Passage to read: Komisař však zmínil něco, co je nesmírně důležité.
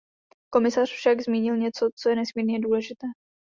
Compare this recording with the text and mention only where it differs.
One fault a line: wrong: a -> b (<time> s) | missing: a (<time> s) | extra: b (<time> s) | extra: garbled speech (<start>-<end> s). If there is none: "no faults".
no faults